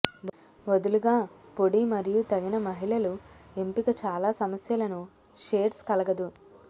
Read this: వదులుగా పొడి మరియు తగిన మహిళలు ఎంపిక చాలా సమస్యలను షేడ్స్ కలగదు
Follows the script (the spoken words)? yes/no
yes